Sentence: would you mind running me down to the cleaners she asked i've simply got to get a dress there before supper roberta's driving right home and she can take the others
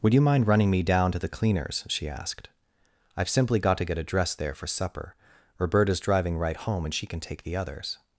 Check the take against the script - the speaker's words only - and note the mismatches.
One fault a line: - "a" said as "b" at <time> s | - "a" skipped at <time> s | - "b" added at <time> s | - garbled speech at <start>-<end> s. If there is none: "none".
- "before" said as "for" at 4.5 s